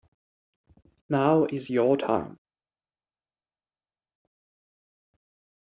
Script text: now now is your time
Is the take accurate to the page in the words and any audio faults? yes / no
no